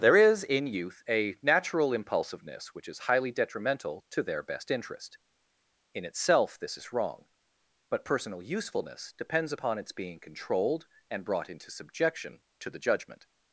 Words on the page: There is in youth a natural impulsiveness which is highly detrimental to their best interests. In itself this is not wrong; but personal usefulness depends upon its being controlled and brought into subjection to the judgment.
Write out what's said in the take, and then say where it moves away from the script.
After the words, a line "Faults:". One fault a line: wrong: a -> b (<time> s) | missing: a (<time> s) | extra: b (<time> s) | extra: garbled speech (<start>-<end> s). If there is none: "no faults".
There is in youth a natural impulsiveness which is highly detrimental to their best interest. In itself this is wrong; but personal usefulness depends upon its being controlled and brought into subjection to the judgment.
Faults:
wrong: interests -> interest (4.7 s)
missing: not (6.9 s)